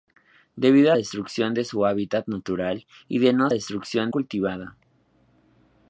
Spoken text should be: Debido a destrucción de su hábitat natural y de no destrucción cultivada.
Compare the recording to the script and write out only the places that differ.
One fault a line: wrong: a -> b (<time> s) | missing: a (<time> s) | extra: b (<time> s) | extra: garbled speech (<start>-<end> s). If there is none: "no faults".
no faults